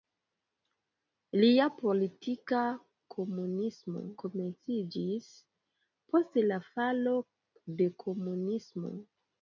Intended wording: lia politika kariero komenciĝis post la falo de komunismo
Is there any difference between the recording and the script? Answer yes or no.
yes